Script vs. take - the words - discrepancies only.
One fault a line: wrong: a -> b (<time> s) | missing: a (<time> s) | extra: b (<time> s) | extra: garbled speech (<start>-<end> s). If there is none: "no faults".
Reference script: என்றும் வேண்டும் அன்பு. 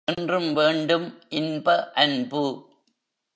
extra: இன்ப (1.3 s)